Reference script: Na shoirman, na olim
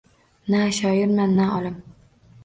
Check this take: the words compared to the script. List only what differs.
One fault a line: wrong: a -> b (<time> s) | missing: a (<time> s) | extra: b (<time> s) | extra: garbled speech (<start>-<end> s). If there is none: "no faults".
no faults